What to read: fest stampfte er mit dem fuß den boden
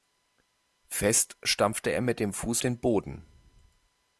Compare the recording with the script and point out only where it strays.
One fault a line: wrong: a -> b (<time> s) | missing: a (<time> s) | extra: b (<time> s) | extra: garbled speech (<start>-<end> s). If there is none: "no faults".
no faults